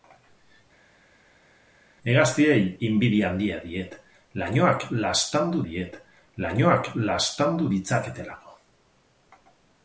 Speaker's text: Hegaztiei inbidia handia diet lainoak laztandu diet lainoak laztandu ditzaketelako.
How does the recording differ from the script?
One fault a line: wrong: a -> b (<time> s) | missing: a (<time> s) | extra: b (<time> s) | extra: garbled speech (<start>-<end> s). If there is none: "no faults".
no faults